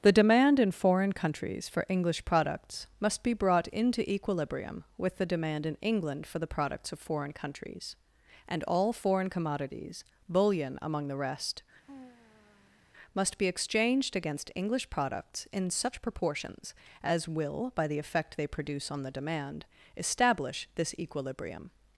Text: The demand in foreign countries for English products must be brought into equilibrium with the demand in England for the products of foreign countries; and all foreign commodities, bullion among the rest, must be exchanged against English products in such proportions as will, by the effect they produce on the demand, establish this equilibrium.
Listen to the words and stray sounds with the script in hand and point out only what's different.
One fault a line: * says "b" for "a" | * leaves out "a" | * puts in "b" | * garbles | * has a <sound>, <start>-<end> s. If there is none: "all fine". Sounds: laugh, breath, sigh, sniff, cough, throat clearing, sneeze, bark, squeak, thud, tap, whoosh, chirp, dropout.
* has a sigh, 11.9-12.9 s